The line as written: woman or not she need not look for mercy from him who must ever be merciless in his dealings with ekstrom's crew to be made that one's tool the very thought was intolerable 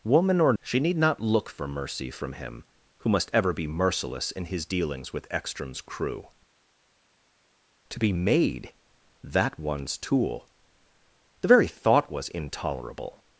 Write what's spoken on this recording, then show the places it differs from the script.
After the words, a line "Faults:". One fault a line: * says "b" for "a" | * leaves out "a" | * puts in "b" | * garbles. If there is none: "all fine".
woman or she need not look for mercy from him who must ever be merciless in his dealings with ekstrom's crew to be made that one's tool the very thought was intolerable
Faults:
* leaves out "not"